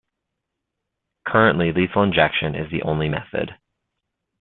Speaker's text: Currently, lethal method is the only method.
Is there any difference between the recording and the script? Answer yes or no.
yes